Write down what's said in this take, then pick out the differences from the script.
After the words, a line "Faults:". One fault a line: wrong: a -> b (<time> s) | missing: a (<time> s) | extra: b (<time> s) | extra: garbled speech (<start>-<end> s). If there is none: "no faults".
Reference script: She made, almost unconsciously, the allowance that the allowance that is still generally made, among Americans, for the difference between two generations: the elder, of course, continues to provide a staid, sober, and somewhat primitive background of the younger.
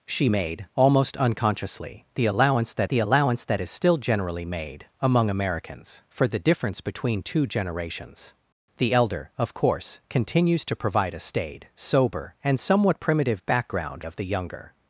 She made, almost unconsciously, the allowance that the allowance that is still generally made, among Americans, for the difference between two generations: the elder, of course, continues to provide a staid, sober, and somewhat primitive background of the younger.
Faults:
no faults